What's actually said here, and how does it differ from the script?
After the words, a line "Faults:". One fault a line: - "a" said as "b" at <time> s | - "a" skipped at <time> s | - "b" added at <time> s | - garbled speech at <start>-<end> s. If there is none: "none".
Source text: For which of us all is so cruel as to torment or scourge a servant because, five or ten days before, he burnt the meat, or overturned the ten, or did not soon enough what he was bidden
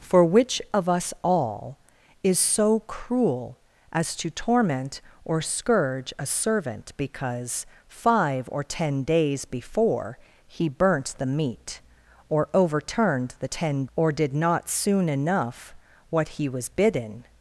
For which of us all is so cruel as to torment or scourge a servant because, five or ten days before, he burnt the meat, or overturned the ten, or did not soon enough what he was bidden
Faults:
none